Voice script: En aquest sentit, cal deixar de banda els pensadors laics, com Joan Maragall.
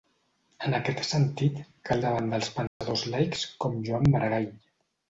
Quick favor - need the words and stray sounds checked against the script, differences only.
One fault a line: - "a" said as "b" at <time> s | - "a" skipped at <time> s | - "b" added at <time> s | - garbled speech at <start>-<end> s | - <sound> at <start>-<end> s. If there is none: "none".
- "deixar" skipped at 2.0 s
- dropout at 2.7-2.8 s